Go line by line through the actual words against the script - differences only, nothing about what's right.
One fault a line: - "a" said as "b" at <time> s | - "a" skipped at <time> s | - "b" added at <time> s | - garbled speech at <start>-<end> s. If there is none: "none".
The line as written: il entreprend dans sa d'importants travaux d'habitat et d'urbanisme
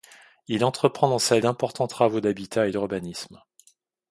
none